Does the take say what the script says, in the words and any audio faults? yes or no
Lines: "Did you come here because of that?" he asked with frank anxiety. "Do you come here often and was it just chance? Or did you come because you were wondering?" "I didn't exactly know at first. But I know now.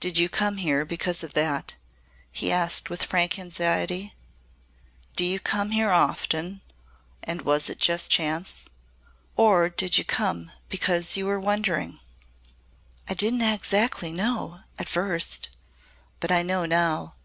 yes